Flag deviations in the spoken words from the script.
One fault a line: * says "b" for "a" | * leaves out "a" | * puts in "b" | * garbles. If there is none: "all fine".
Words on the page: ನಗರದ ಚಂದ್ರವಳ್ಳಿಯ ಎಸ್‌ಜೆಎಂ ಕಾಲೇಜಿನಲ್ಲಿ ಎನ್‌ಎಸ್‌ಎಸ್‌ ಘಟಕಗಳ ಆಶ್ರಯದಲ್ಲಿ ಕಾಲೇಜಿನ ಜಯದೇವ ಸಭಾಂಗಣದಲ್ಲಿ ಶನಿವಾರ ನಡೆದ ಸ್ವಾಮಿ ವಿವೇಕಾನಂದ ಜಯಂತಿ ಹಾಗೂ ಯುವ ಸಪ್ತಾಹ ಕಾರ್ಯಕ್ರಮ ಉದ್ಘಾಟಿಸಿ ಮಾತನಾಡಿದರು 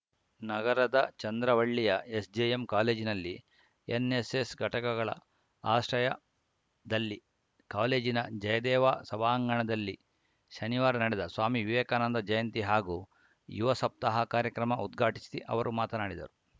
* puts in "ಅವರು"